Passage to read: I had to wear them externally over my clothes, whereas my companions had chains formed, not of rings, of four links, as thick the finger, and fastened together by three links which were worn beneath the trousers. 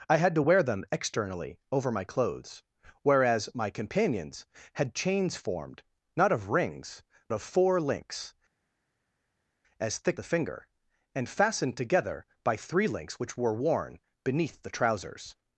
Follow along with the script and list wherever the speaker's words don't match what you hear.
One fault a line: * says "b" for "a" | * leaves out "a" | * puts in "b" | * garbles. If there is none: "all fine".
all fine